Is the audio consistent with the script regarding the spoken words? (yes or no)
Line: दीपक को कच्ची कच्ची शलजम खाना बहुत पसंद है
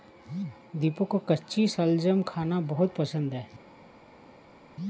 no